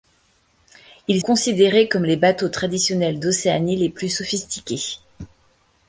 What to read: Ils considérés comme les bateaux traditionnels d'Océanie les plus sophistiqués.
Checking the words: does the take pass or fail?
pass